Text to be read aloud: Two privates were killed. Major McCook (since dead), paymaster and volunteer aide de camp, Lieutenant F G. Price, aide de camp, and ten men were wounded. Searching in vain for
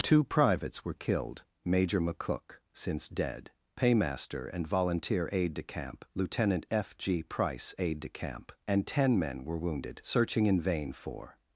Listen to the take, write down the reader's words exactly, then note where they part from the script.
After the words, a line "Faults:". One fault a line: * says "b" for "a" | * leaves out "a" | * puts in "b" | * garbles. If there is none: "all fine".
Two privates were killed. Major McCook (since dead), paymaster and volunteer aide de camp, Lieutenant F G. Price, aide de camp, and ten men were wounded. Searching in vain for
Faults:
all fine